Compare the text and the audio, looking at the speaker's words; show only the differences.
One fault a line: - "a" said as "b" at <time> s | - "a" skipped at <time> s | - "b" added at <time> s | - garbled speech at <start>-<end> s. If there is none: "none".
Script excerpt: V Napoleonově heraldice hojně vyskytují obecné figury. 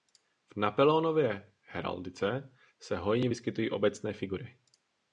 - "se" added at 2.8 s